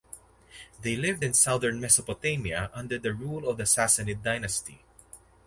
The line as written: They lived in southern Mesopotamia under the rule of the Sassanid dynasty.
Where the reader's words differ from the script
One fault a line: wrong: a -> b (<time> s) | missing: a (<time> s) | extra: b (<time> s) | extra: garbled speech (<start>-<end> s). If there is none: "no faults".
no faults